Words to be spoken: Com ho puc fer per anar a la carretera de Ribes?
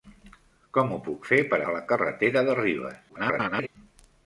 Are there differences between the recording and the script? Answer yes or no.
yes